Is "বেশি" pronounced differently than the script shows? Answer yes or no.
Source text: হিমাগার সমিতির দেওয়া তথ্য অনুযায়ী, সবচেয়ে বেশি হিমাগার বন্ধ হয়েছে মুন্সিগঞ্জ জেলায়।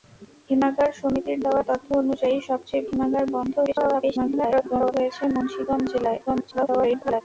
yes